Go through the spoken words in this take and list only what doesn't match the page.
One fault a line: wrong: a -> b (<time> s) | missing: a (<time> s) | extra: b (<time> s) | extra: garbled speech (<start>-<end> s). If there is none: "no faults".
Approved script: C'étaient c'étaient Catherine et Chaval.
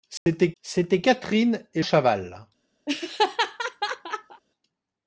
no faults